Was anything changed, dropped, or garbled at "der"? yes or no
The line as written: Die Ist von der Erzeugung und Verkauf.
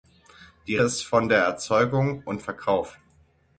no